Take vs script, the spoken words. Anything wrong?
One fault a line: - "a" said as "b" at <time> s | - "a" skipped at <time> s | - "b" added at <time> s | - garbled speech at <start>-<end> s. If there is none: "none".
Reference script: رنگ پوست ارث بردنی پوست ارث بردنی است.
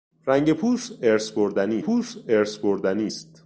none